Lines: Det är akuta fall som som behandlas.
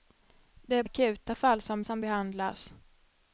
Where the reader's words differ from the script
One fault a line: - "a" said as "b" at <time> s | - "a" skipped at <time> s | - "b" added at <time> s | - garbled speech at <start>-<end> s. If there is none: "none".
none